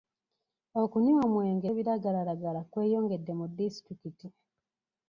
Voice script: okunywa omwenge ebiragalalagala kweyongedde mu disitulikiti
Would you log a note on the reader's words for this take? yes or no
no